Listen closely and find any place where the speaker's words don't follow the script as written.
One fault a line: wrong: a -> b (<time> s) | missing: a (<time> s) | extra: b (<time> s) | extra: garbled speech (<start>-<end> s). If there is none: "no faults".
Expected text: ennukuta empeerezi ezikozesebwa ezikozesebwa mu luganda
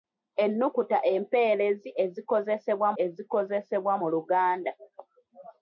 no faults